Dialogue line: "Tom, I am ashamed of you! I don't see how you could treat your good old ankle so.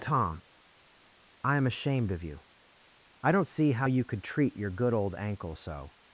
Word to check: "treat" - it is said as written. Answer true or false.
true